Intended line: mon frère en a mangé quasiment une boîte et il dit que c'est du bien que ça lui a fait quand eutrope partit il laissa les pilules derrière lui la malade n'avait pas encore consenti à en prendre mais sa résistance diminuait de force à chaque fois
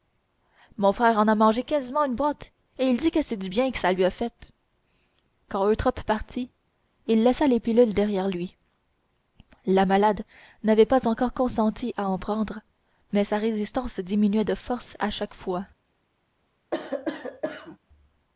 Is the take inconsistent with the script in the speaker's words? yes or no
no